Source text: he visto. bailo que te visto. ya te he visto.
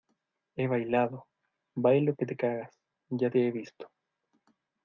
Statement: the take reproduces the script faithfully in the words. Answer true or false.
false